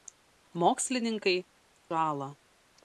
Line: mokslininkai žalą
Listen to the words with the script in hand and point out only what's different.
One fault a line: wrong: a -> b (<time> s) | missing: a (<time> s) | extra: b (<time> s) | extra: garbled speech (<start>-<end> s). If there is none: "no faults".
no faults